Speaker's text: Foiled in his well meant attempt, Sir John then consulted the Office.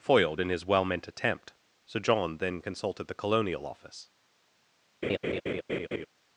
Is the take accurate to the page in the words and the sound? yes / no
no